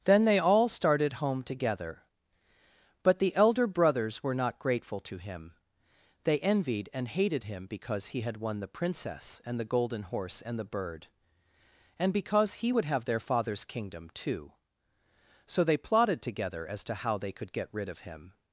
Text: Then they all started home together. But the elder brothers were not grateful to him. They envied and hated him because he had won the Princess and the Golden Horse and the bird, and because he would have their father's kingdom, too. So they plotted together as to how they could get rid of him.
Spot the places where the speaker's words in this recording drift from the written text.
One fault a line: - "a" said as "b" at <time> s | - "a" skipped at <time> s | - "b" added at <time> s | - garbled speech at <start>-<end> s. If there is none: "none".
none